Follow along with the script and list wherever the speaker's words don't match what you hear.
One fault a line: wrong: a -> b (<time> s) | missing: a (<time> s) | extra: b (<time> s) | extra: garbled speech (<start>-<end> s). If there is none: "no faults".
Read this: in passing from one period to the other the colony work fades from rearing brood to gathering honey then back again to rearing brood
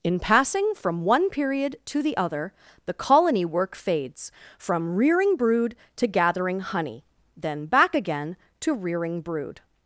no faults